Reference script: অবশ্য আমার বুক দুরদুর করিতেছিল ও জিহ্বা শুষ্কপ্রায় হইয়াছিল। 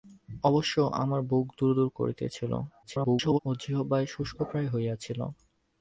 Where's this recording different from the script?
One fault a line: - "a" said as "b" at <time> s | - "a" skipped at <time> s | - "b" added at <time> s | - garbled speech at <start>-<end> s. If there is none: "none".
- garbled speech at 2.8-3.4 s